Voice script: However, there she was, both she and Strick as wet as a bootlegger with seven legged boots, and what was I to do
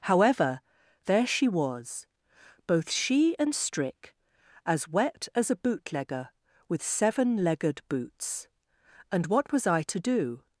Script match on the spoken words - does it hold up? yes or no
yes